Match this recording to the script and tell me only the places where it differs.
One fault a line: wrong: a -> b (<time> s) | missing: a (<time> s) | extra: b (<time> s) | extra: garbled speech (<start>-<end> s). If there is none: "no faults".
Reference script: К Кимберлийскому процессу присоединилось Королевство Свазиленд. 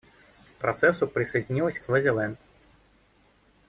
missing: Кимберлийскому (0.6 s)
missing: Королевство (1.8 s)